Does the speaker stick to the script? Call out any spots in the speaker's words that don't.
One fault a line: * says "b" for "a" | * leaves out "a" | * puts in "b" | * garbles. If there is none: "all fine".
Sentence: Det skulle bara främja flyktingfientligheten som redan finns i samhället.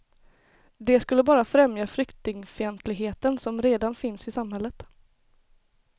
all fine